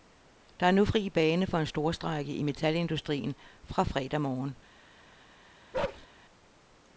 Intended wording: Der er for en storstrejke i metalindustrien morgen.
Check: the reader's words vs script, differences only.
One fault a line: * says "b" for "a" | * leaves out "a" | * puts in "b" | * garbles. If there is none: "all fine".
* puts in "nu fri bane"
* puts in "fra fredag"